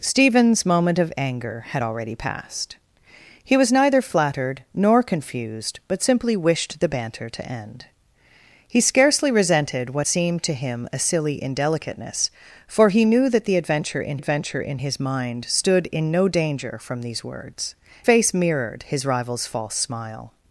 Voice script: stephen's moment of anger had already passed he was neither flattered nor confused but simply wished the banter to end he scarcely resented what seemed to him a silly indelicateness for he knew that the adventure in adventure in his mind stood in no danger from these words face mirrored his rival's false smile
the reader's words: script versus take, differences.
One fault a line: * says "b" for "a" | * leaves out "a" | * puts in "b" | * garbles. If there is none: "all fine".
all fine